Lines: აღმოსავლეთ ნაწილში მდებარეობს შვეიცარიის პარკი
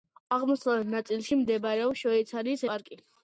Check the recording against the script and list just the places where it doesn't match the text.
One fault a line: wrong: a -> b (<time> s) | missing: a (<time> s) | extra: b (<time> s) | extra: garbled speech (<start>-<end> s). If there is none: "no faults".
no faults